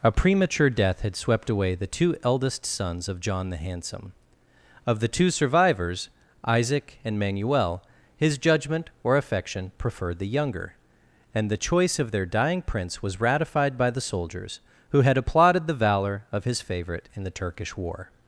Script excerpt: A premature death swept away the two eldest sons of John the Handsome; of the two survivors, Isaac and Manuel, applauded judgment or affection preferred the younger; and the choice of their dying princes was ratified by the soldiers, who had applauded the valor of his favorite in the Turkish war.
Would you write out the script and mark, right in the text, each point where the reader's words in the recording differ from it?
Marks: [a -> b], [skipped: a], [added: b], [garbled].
A premature death [added: had] swept away the two eldest sons of John the Handsome; of the two survivors, Isaac and Manuel, [applauded -> his] judgment or affection preferred the younger; and the choice of their dying [princes -> prince] was ratified by the soldiers, who had applauded the valor of his favorite in the Turkish war.